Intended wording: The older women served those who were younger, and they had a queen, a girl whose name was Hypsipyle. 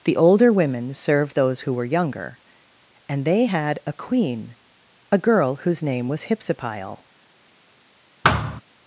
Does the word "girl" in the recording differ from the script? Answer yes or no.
no